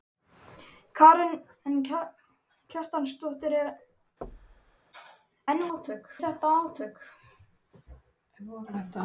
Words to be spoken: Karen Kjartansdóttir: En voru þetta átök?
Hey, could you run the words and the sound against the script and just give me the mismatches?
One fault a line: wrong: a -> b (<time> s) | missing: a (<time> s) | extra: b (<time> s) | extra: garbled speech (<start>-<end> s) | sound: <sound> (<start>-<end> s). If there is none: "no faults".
sound: thud (4.2-4.8 s)
wrong: voru -> átök (5.7 s)